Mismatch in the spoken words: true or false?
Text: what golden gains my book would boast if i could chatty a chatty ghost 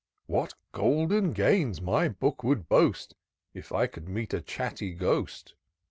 true